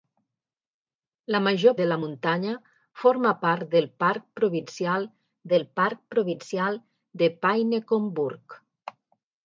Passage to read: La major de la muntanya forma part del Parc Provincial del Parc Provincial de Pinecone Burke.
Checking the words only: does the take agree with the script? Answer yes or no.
yes